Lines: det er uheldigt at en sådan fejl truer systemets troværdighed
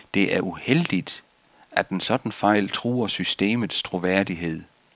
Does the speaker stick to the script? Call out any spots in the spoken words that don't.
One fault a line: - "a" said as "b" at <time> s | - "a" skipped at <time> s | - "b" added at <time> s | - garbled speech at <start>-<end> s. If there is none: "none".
none